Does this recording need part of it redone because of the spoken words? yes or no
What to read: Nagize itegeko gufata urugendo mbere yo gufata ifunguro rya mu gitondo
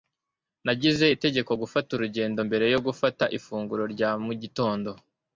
no